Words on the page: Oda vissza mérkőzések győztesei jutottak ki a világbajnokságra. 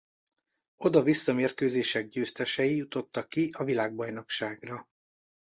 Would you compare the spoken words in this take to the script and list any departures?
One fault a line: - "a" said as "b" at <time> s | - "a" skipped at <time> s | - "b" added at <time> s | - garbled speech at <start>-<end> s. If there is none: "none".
none